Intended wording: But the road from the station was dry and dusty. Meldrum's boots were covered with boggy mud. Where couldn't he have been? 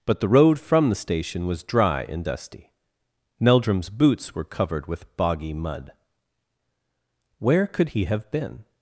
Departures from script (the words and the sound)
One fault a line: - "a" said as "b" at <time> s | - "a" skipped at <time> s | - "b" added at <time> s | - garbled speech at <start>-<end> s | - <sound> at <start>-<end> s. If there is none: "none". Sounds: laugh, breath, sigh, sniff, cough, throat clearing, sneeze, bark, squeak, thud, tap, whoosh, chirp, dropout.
- "couldn't" said as "could" at 7.7 s